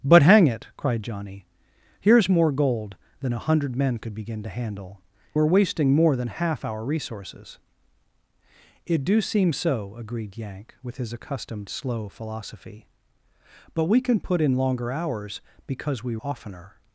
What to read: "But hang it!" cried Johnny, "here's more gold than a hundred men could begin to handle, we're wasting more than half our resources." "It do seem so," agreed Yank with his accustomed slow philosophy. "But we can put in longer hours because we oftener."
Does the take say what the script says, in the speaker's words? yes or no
yes